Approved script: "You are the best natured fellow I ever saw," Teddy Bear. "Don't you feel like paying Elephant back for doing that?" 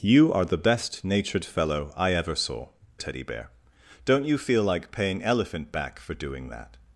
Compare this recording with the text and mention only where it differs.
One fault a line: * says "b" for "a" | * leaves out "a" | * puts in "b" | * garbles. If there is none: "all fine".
all fine